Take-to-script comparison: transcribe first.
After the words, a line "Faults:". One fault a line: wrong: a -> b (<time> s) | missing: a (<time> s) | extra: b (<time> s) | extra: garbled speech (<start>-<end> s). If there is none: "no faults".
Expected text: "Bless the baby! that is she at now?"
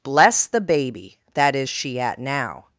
"Bless the baby! that is she at now?"
Faults:
no faults